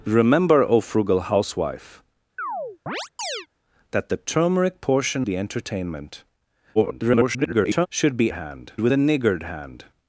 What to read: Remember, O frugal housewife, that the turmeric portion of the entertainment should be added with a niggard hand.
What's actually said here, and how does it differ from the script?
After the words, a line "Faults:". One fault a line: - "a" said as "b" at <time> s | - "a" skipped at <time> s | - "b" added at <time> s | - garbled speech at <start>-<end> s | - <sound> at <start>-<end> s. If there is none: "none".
Remember, O frugal housewife, that the turmeric portion the entertainment [garbled] should be hand with a niggard hand.
Faults:
- chirp at 2.4-3.5 s
- "of" skipped at 5.3 s
- garbled speech at 6.7-7.9 s
- "added" said as "hand" at 8.3 s